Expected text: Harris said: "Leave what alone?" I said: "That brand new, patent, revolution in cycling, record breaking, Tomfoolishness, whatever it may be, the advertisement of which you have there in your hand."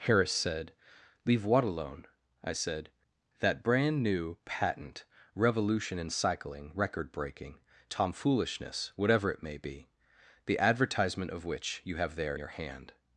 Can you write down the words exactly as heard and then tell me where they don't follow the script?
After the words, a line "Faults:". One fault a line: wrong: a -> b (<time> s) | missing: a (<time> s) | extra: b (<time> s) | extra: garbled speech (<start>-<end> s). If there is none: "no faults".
Harris said: "Leave what alone?" I said: "That brand new, patent, revolution in cycling, record breaking, Tomfoolishness, whatever it may be, the advertisement of which you have there your hand."
Faults:
missing: in (12.3 s)